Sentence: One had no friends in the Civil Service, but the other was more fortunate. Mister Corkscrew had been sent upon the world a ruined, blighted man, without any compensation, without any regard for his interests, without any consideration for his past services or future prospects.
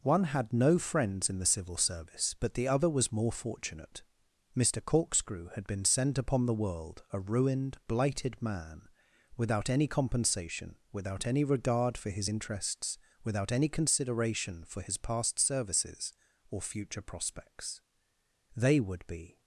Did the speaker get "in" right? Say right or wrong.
right